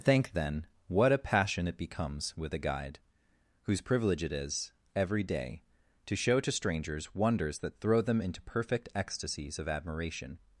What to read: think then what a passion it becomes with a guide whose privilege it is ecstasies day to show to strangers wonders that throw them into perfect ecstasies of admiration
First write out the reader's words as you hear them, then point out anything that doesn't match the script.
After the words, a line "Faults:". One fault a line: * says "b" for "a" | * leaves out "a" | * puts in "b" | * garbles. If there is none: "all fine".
think then what a passion it becomes with a guide whose privilege it is every day to show to strangers wonders that throw them into perfect ecstasies of admiration
Faults:
* says "every" for "ecstasies"